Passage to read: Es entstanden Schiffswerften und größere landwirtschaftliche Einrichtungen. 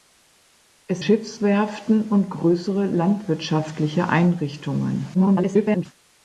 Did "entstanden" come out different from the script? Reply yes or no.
yes